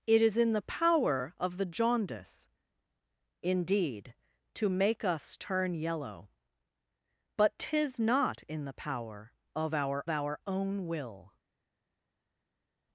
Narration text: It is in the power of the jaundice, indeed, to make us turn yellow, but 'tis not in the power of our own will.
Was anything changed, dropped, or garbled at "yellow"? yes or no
no